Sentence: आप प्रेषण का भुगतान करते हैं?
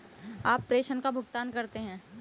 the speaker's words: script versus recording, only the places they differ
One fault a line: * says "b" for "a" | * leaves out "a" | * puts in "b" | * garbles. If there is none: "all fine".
all fine